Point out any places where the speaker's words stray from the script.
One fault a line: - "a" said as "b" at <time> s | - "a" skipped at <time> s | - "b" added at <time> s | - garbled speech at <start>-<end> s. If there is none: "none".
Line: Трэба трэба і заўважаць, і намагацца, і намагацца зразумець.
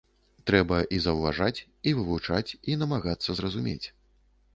- "трэба" skipped at 0.8 s
- "намагацца" said as "вывучаць" at 2.0 s